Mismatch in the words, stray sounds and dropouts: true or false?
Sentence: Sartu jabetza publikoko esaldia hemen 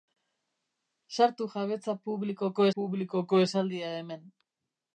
true